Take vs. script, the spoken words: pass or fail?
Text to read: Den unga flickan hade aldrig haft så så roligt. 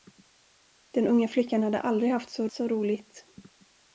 pass